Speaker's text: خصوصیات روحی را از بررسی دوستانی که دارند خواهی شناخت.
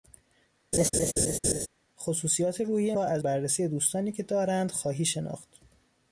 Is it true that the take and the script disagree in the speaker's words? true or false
false